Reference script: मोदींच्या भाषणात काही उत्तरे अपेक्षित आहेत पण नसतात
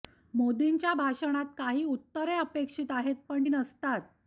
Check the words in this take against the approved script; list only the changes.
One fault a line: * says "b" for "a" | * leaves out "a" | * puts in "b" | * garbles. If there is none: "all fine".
all fine